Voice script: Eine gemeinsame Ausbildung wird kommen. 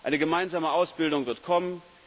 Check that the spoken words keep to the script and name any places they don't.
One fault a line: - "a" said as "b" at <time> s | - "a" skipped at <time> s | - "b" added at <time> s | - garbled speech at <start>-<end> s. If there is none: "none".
none